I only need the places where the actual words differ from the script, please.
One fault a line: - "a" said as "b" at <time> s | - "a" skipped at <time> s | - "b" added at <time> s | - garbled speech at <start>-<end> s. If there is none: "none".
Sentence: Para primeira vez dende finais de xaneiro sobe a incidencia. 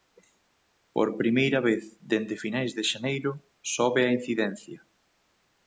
- "Para" said as "Por" at 0.9 s